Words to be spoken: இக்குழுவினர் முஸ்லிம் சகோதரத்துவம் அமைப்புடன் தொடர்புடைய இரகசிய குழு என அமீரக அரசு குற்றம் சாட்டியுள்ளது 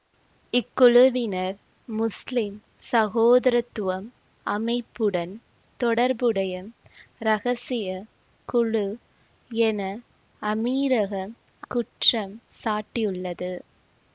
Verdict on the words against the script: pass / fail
fail